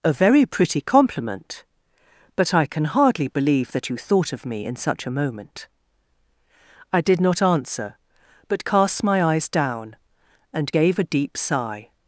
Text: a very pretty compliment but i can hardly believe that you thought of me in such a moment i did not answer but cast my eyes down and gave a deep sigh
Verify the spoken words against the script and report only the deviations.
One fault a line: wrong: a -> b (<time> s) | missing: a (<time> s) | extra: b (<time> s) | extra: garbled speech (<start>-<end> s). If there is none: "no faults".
no faults